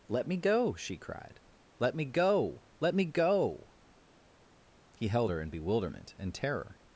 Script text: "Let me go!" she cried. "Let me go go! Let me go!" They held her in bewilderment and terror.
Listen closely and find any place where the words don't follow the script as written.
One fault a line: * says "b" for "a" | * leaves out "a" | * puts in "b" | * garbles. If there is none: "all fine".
* leaves out "go"
* says "He" for "They"